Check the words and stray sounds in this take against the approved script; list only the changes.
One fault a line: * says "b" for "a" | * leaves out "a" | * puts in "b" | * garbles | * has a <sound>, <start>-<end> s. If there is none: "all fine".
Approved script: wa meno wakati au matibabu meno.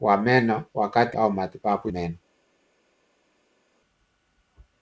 all fine